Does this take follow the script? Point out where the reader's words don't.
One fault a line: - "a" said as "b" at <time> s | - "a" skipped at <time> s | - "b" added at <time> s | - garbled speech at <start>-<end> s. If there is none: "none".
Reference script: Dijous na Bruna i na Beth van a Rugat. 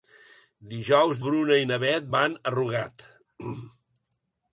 - "na" skipped at 1.2 s